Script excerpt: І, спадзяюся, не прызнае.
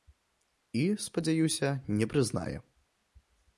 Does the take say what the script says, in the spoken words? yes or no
yes